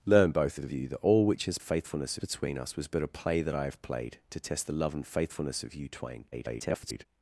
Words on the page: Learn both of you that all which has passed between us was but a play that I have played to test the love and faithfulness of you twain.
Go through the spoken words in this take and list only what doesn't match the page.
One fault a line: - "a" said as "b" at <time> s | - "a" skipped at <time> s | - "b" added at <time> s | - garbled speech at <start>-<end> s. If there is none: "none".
- "of" added at 0.6 s
- "passed" said as "faithfulness" at 1.6 s
- garbled speech at 6.3-7.1 s